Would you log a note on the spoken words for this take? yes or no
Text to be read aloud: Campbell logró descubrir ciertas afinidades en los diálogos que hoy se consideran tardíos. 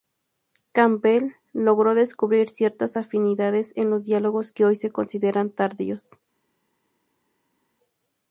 no